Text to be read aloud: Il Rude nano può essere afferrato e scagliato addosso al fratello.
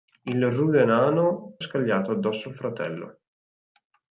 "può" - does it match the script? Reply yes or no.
no